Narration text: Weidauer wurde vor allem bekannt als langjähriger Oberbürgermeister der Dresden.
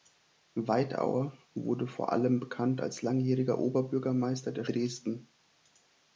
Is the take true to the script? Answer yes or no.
yes